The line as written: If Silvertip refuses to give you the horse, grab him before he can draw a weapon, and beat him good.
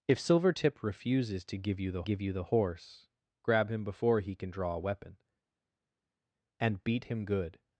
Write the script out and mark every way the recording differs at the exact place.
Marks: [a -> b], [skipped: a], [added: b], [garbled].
If Silvertip refuses to give you the [added: give you the] horse, grab him before he can draw a weapon, and beat him good.